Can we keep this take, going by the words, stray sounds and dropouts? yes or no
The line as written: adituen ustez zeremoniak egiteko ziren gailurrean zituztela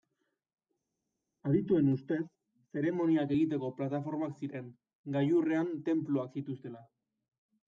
no